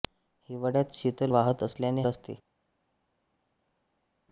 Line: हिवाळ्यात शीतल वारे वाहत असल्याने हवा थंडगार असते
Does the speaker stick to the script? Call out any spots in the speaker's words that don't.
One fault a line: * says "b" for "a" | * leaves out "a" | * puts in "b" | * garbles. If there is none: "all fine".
* leaves out "वारे"
* leaves out "हवा थंडगार"